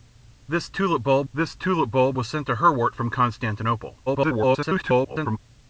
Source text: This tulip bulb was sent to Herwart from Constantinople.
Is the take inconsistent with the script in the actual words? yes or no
yes